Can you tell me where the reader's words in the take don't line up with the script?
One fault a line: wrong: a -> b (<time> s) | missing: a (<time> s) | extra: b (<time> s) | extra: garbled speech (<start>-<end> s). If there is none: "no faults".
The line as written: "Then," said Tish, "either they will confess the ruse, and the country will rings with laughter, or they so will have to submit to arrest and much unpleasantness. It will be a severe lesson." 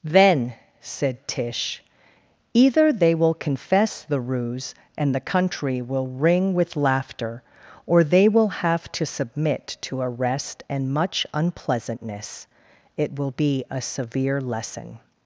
wrong: rings -> ring (6.1 s)
missing: so (8.3 s)